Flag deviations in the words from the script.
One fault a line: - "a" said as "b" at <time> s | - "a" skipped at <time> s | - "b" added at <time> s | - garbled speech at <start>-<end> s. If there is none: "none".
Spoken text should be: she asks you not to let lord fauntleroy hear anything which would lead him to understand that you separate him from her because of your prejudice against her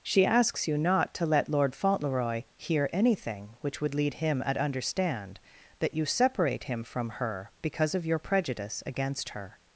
- "to" said as "at" at 4.5 s